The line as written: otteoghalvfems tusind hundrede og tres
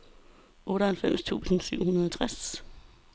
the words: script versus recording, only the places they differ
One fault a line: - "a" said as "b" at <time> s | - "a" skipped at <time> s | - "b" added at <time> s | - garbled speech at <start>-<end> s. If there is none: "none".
- "syv" added at 1.6 s